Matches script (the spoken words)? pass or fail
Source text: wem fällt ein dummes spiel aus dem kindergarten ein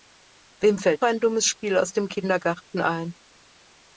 pass